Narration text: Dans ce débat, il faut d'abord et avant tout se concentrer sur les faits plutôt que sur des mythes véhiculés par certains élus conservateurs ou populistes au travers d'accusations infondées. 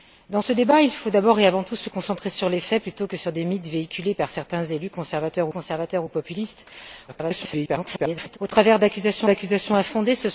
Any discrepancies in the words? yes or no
yes